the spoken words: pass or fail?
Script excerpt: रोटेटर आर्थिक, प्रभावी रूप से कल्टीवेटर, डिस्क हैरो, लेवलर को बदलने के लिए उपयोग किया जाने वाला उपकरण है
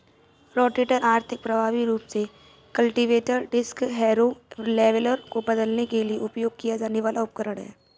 pass